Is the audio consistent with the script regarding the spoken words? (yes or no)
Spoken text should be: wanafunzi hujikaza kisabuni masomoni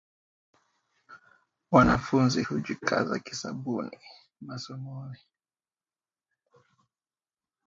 yes